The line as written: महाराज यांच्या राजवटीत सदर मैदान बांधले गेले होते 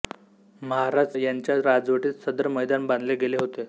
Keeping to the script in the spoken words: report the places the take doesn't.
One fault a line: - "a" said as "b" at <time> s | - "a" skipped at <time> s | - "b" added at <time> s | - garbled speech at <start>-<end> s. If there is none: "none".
none